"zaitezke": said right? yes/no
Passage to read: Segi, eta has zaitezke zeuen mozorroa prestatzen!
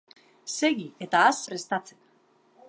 no